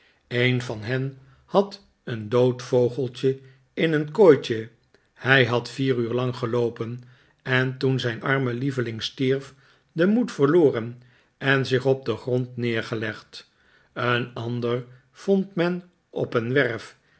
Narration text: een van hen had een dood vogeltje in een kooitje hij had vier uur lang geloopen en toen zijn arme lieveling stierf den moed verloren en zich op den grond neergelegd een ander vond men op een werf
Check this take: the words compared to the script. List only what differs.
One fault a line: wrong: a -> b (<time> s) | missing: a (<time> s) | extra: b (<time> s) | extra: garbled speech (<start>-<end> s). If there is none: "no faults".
no faults